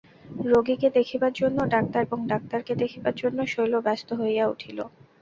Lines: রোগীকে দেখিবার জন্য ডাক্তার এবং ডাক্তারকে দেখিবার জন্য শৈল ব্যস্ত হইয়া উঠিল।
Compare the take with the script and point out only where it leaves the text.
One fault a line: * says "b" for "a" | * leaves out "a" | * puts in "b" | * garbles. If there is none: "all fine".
all fine